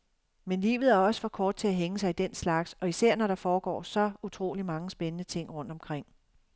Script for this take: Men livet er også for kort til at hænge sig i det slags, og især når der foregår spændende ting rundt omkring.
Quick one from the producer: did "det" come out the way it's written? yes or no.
no